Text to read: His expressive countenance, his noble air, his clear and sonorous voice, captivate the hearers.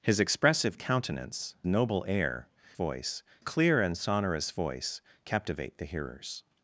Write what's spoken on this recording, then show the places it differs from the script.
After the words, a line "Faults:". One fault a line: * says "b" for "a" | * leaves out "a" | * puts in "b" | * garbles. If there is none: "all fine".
His expressive countenance, noble air, voice clear and sonorous voice, captivate the hearers.
Faults:
* leaves out "his"
* says "voice" for "his"